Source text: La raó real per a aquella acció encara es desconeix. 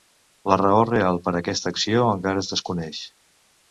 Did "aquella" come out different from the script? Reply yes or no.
yes